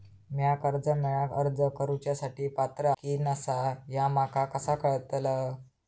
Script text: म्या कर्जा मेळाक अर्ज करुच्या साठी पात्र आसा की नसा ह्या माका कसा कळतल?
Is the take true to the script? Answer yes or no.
no